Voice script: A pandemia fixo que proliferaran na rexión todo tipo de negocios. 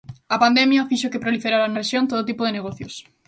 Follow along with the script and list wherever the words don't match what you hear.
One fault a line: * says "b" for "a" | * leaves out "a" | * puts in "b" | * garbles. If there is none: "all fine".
* leaves out "na"